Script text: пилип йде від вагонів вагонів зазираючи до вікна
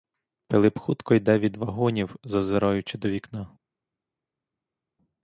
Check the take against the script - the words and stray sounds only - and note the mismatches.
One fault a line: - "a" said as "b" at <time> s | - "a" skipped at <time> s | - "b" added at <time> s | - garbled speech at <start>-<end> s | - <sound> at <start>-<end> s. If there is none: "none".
- "хутко" added at 0.8 s
- "вагонів" skipped at 2.1 s